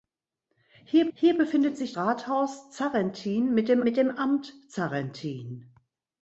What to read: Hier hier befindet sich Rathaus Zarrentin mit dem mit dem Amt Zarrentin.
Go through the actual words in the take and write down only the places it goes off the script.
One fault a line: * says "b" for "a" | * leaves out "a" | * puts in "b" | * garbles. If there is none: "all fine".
all fine